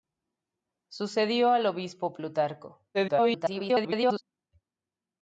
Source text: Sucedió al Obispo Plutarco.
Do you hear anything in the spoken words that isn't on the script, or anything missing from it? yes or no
yes